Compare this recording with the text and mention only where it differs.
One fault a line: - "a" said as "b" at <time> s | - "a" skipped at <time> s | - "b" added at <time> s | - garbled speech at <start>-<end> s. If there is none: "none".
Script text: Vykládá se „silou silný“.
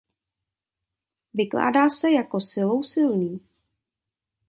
- "jako" added at 2.1 s